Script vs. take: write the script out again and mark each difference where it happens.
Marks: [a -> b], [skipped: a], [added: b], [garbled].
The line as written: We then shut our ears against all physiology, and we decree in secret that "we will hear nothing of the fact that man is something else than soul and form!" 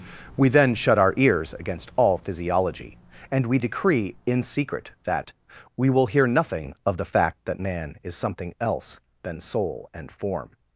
We then shut our ears against all physiology, and we decree in secret that "we will hear nothing of the fact that man is something else than soul and form!"